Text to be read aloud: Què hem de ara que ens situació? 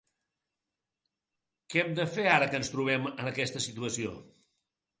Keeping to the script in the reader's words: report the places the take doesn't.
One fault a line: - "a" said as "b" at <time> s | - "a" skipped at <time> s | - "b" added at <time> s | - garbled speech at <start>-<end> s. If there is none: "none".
- "fer" added at 2.2 s
- "trobem en aquesta" added at 2.8 s